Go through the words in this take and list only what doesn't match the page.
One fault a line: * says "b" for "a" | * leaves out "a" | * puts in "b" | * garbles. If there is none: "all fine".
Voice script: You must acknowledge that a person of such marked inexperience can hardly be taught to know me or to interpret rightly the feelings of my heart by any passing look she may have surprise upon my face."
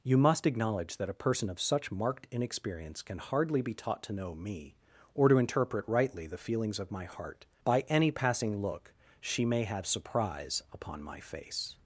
all fine